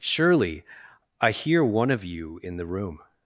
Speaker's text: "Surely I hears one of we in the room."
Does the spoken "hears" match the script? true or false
false